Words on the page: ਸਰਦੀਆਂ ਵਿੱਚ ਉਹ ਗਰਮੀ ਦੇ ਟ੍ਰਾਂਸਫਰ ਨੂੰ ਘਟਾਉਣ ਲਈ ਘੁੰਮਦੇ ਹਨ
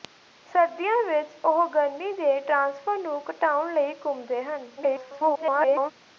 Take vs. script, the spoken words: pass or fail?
fail